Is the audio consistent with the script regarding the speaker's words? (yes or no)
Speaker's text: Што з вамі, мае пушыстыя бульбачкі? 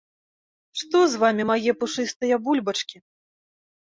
yes